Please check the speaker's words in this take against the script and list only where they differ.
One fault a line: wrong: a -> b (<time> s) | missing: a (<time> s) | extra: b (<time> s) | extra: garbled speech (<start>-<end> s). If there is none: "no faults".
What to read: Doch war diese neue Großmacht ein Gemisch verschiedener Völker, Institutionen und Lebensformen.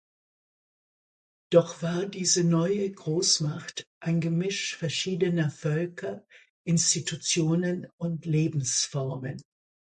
no faults